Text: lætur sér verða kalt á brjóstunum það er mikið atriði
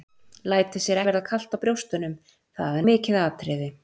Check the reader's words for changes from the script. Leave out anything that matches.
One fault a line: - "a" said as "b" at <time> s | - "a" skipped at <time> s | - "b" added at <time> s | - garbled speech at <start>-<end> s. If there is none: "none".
none